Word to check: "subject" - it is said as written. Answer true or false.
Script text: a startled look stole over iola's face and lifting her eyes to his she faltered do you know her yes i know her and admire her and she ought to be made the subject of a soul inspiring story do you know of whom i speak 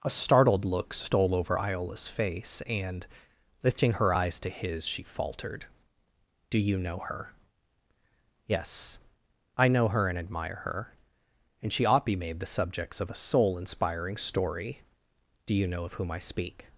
false